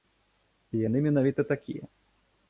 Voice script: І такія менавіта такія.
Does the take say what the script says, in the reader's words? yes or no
no